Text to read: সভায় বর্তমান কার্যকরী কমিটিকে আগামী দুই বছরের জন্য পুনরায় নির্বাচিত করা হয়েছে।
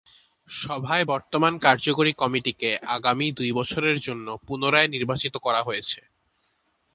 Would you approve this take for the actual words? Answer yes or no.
yes